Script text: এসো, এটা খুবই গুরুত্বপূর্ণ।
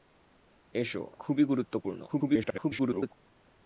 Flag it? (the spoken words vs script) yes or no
yes